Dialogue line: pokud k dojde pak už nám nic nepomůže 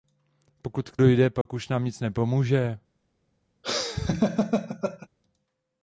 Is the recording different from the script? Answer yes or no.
no